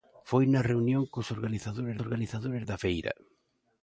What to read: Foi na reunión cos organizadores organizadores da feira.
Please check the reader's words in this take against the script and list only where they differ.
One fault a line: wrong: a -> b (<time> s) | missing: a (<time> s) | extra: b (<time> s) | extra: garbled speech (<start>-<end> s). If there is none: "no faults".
no faults